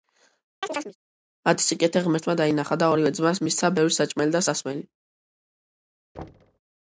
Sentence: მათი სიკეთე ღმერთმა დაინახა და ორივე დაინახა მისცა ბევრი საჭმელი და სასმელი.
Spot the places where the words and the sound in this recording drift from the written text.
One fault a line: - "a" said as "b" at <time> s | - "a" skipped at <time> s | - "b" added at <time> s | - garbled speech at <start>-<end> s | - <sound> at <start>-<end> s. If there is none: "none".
- chirp at 0.6-1.0 s
- "დაინახა" said as "ძმას" at 3.2 s
- thud at 6.1-6.6 s